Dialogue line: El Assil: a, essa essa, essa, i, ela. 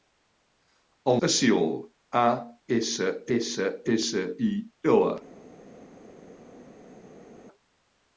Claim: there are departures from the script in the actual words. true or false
false